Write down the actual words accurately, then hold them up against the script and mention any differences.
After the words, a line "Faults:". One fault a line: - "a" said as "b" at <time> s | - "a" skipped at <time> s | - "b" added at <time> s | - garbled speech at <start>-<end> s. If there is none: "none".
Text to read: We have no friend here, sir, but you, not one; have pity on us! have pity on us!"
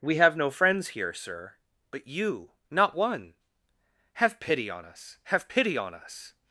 We have no friends here, sir, but you, not one; have pity on us! have pity on us!"
Faults:
- "friend" said as "friends" at 0.5 s